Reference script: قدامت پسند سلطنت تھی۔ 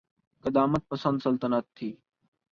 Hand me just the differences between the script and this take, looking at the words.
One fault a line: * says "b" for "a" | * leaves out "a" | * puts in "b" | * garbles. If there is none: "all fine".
all fine